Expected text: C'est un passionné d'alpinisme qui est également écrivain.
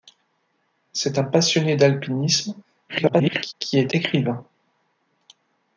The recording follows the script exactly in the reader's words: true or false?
false